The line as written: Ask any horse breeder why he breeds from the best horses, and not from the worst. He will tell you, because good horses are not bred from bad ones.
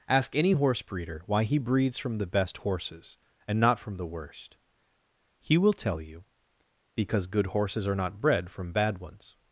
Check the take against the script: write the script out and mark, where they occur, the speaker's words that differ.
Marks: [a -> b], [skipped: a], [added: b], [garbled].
Ask any horse breeder why he breeds from the best horses, and not from the worst. He will tell you, because good horses are not bred from bad ones.